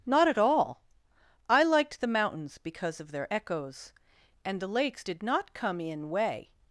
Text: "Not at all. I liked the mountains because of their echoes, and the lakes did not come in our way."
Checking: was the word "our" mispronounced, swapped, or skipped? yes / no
yes